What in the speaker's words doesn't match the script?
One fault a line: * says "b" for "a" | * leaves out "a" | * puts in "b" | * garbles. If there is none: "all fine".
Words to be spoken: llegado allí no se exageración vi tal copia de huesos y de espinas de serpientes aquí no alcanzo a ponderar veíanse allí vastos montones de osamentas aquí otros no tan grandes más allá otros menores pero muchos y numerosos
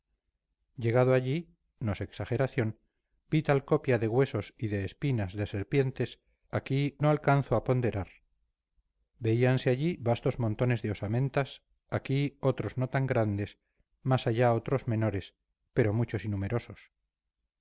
all fine